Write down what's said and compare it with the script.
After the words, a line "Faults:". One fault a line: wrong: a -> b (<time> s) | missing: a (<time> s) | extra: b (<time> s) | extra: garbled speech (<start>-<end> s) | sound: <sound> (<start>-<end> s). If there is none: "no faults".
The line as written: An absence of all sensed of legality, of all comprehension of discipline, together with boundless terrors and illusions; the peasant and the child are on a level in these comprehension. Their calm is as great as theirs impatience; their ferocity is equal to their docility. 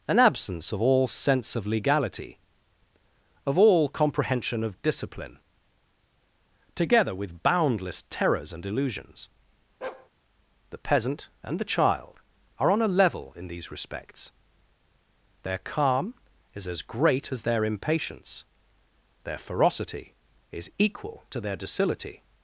An absence of all sense of legality, of all comprehension of discipline, together with boundless terrors and illusions; the peasant and the child are on a level in these respects. Their calm is as great as their impatience; their ferocity is equal to their docility.
Faults:
wrong: sensed -> sense (1.1 s)
sound: bark (9.8-10.1 s)
wrong: comprehension -> respects (13.7 s)
wrong: theirs -> their (17.4 s)